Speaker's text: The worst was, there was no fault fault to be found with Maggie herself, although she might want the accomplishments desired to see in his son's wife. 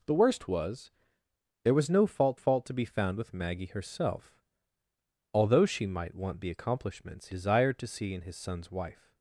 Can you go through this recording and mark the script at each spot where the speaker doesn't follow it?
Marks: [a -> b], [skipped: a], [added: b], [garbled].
The worst was, there was no fault fault to be found with Maggie herself, although she might want the accomplishments desired to see in his son's wife.